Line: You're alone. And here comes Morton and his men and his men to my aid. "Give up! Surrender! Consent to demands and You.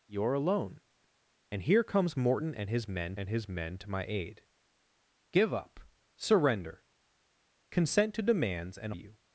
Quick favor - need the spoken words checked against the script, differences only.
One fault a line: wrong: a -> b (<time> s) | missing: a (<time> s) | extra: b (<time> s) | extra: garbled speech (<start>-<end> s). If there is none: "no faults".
no faults